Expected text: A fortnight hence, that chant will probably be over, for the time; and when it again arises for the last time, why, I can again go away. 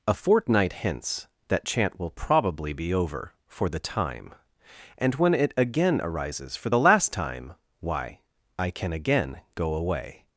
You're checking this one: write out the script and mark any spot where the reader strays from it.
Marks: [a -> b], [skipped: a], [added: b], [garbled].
A fortnight hence, that chant will probably be over, for the time; and when it again arises for the last time, why, I can again go away.